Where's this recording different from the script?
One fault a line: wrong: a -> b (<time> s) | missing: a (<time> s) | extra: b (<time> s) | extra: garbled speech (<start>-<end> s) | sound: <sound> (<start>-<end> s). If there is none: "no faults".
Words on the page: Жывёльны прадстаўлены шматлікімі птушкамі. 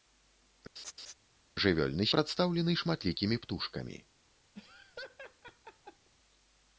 sound: laugh (0.8-1.1 s)
sound: laugh (4.6-6.1 s)